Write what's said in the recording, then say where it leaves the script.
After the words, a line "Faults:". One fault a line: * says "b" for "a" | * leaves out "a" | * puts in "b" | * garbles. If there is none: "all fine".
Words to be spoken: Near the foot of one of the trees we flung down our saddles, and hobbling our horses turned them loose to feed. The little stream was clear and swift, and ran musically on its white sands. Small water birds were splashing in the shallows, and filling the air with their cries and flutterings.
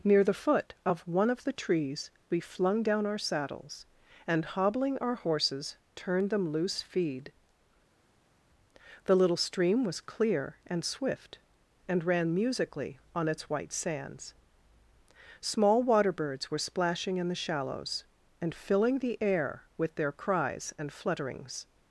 Near the foot of one of the trees we flung down our saddles, and hobbling our horses turned them loose feed. The little stream was clear and swift, and ran musically on its white sands. Small water birds were splashing in the shallows, and filling the air with their cries and flutterings.
Faults:
* leaves out "to"